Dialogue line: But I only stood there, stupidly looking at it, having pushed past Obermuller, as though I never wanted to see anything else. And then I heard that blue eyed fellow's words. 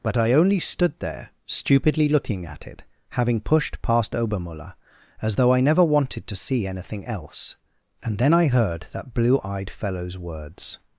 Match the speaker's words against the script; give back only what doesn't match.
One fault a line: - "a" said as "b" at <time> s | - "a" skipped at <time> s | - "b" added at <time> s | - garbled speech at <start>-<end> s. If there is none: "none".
none